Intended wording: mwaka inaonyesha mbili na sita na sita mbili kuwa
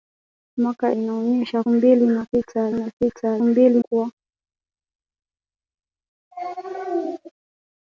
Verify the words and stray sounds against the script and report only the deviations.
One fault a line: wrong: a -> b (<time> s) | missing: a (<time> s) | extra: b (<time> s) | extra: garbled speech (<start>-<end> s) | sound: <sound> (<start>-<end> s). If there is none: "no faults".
no faults